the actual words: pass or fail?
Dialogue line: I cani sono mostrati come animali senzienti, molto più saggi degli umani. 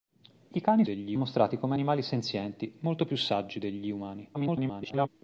fail